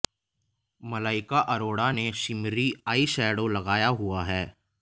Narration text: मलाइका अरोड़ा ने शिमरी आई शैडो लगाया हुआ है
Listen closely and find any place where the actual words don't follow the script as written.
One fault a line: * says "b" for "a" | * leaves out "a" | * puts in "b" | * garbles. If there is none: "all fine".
all fine